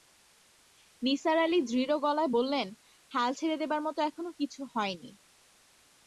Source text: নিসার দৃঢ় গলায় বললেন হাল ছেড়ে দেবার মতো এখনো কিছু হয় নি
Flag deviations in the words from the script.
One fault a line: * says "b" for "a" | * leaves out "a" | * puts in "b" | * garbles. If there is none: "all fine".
* puts in "আলি"